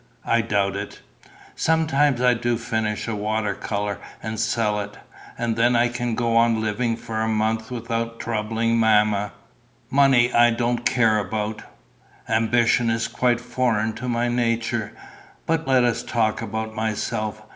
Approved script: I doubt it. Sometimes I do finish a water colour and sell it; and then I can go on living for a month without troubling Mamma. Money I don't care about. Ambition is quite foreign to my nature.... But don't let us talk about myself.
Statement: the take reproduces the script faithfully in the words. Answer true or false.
false